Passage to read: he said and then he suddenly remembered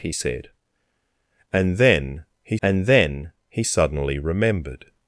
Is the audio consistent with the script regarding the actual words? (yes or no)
no